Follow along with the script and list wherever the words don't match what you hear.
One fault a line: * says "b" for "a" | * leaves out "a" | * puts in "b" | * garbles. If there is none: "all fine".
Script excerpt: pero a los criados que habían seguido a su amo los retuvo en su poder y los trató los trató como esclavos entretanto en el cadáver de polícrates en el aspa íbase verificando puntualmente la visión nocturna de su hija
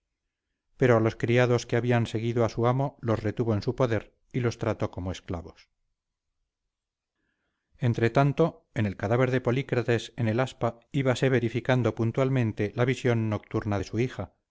* leaves out "los trató"